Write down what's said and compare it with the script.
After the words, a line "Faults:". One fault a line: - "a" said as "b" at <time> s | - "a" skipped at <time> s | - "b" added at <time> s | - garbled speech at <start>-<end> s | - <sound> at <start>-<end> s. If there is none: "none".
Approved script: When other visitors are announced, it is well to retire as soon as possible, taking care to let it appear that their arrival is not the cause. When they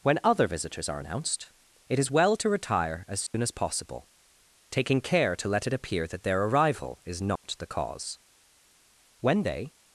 When other visitors are announced, it is well to retire as soon as possible, taking care to let it appear that their arrival is not the cause. When they
Faults:
- dropout at 3.3-3.3 s
- dropout at 7.4-7.4 s